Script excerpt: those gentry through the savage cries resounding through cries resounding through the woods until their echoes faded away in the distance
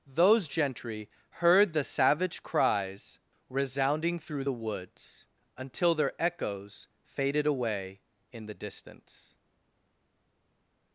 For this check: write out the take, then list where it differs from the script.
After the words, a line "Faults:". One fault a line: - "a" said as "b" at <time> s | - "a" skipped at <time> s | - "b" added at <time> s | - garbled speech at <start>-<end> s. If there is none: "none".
those gentry heard the savage cries resounding through the woods until their echoes faded away in the distance
Faults:
- "through" said as "heard" at 1.4 s
- "cries resounding through" skipped at 4.5 s